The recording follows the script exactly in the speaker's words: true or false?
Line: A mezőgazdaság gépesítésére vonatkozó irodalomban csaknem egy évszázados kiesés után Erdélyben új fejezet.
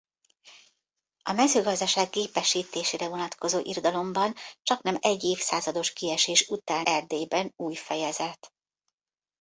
true